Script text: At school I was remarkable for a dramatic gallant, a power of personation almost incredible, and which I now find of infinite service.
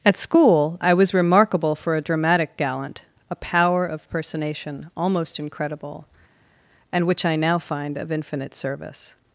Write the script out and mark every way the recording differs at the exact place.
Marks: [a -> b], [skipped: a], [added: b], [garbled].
At school I was remarkable for a dramatic gallant, a power of personation almost incredible, and which I now find of infinite service.